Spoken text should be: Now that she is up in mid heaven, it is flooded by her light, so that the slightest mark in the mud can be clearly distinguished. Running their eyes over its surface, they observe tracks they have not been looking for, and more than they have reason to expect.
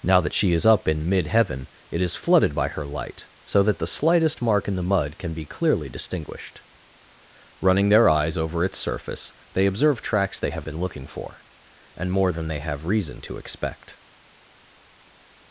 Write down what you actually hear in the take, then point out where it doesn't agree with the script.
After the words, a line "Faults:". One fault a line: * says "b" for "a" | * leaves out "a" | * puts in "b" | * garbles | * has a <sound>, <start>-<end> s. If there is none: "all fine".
Now that she is up in mid heaven, it is flooded by her light, so that the slightest mark in the mud can be clearly distinguished. Running their eyes over its surface, they observe tracks they have been looking for, and more than they have reason to expect.
Faults:
* leaves out "not"